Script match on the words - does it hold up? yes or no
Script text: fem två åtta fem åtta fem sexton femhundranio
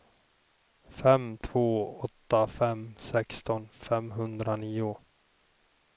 no